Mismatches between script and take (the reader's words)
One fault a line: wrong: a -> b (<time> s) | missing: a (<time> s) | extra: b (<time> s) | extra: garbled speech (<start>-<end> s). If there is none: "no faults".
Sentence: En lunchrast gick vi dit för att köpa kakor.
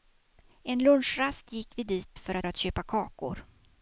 extra: att (2.4 s)